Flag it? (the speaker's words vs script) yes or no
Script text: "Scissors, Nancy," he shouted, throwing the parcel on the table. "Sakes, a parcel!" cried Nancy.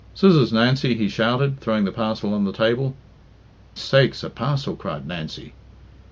no